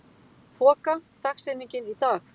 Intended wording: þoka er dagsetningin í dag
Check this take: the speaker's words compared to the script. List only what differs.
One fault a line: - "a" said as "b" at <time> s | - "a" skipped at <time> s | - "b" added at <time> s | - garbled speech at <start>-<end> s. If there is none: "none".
none